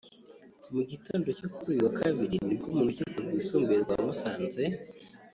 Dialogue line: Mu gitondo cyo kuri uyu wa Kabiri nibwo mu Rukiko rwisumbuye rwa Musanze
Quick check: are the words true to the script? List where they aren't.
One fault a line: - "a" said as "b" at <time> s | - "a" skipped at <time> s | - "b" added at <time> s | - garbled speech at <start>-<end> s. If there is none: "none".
none